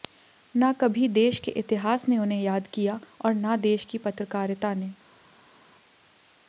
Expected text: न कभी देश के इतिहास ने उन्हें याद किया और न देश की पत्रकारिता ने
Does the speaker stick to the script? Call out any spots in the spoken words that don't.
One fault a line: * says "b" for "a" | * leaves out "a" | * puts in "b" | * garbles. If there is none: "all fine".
all fine